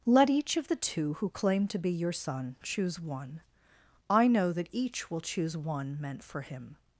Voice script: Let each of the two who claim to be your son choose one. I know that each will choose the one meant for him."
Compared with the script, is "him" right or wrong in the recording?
right